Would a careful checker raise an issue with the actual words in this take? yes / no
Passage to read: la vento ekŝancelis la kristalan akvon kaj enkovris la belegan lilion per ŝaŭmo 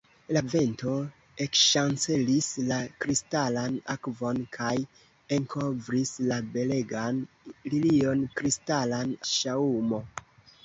yes